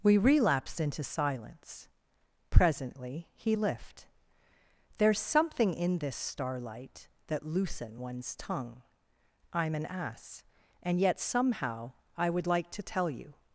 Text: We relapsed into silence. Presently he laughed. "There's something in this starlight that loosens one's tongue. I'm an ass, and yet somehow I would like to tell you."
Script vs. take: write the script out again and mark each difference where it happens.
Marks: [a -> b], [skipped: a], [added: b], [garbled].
We relapsed into silence. Presently he [laughed. -> lift] "There's something in this starlight that [loosens -> loosen] one's tongue. I'm an ass, and yet somehow I would like to tell you."